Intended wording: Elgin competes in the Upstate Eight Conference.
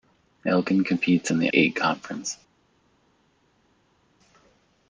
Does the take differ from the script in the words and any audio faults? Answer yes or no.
yes